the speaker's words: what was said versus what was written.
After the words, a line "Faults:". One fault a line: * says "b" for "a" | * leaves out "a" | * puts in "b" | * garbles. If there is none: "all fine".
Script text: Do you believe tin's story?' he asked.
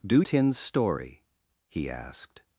Do tin's story?' he asked.
Faults:
* leaves out "you believe"